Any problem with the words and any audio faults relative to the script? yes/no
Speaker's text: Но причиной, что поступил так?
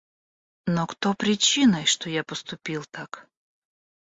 yes